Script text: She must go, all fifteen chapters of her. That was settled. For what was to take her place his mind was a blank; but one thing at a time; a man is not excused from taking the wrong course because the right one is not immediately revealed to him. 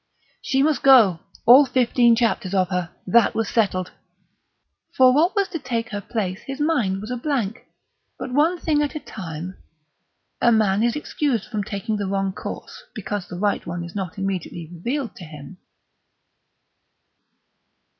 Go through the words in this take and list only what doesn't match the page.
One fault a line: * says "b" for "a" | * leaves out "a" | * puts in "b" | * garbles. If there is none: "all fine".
* leaves out "not"